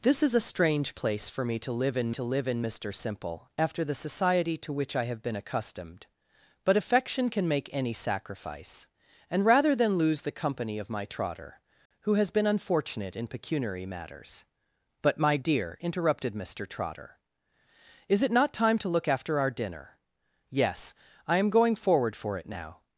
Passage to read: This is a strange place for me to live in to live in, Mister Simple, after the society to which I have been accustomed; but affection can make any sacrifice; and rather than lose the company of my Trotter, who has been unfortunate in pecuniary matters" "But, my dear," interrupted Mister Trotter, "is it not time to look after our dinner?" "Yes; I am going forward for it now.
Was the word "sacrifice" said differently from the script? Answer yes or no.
no